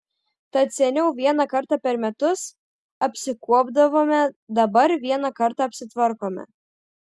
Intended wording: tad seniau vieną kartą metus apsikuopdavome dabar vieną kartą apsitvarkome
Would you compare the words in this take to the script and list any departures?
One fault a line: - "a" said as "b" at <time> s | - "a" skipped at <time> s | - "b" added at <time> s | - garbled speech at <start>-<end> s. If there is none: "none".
- "per" added at 1.9 s